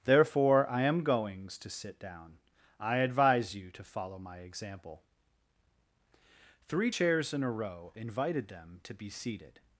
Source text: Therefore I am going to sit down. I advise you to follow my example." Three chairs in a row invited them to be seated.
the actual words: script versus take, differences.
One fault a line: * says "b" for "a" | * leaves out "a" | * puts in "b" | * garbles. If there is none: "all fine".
* says "goings" for "going"